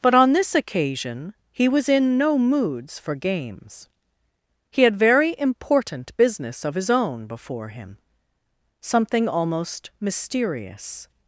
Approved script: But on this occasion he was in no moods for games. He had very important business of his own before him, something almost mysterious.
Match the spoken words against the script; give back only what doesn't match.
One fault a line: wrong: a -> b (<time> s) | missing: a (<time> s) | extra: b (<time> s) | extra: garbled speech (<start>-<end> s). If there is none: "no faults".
no faults